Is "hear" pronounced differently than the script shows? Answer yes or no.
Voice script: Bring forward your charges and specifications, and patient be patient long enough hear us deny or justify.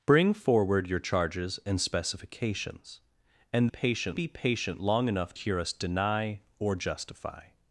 no